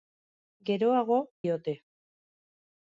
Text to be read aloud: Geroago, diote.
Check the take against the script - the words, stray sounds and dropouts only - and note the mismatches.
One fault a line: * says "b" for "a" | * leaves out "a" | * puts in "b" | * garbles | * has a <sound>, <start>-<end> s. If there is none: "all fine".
all fine